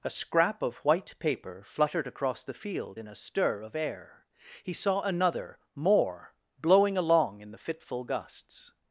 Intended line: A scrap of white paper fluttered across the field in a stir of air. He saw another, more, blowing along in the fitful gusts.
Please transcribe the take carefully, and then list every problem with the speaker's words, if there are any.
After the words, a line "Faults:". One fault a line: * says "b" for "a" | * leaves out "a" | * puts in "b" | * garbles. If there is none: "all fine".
A scrap of white paper fluttered across the field in a stir of air. He saw another, more, blowing along in the fitful gusts.
Faults:
all fine